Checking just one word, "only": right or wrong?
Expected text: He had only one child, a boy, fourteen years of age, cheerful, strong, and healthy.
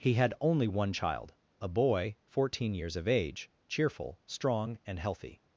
right